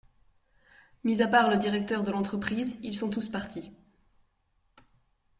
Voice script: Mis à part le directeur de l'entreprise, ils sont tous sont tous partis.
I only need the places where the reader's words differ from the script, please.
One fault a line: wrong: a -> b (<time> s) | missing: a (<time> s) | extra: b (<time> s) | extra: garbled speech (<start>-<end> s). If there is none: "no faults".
missing: sont tous (3.3 s)